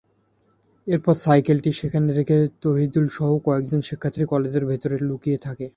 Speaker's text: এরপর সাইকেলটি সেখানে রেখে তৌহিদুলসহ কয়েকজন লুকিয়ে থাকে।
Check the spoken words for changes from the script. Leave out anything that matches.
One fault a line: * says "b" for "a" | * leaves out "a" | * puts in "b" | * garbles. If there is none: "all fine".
* puts in "শিক্ষার্থী কলেজের ভেতরে"